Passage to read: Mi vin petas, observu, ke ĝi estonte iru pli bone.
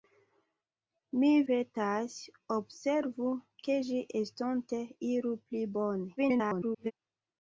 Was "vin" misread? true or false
true